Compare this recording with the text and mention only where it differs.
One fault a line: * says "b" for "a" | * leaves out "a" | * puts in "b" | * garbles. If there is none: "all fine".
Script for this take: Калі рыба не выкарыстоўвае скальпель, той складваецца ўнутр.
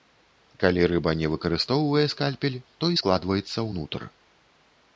all fine